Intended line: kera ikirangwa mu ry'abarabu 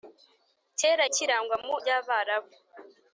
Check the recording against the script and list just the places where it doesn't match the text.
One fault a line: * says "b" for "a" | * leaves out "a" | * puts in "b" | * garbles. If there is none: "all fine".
all fine